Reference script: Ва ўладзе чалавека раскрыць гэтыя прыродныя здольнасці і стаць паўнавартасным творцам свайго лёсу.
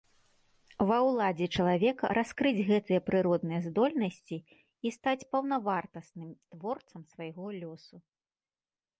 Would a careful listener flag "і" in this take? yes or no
no